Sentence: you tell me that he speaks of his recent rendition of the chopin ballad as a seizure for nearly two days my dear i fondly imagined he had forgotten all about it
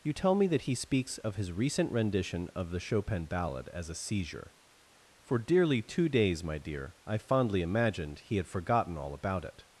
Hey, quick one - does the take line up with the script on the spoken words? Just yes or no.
no